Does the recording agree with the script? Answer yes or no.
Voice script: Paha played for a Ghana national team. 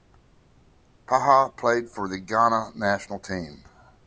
no